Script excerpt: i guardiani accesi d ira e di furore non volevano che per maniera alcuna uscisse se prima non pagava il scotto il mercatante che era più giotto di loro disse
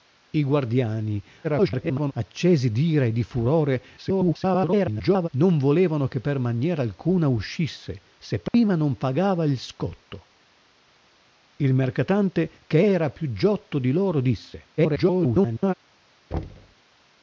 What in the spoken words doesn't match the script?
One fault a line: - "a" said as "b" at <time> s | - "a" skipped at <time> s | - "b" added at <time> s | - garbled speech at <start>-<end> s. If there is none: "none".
- garbled speech at 1.4-2.1 s
- garbled speech at 4.0-5.3 s
- garbled speech at 14.8-15.7 s